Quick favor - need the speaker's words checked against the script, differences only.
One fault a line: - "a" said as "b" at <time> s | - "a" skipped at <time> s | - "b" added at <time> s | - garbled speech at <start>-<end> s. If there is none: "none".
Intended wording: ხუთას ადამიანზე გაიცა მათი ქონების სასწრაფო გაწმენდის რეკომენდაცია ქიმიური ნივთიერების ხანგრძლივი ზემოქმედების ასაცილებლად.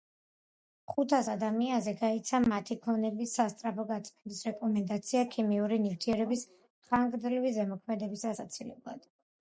none